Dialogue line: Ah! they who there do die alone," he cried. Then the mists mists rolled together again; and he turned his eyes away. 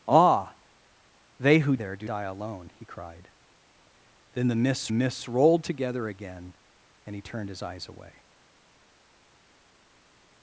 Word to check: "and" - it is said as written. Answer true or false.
true